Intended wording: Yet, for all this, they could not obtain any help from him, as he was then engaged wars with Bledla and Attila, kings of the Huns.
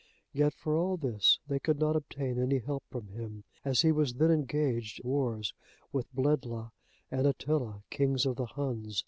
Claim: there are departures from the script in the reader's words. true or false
false